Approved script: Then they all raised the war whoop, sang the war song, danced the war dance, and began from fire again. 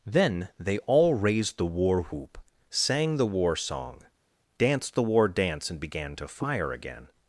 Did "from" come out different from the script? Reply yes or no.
yes